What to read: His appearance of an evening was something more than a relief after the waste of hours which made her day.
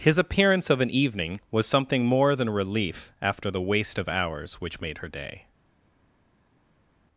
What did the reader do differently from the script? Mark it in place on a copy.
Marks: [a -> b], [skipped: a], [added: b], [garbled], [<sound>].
His appearance of an evening was something more than [skipped: a] relief after the waste of hours which made her day.